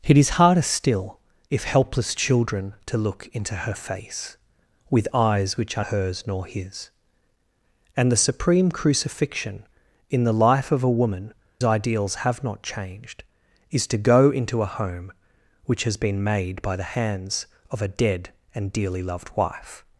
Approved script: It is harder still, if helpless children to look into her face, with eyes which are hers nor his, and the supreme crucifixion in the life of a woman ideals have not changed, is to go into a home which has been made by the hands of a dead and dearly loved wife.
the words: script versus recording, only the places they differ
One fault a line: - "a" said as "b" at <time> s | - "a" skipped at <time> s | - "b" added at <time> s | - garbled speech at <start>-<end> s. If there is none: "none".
none